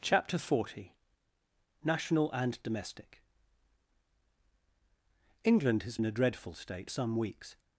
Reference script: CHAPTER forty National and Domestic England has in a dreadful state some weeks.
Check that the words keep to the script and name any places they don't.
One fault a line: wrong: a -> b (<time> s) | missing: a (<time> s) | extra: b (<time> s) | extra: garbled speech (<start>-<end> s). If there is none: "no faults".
no faults